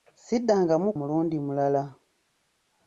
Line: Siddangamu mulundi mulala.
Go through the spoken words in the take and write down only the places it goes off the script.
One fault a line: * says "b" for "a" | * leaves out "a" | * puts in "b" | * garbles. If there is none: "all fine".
all fine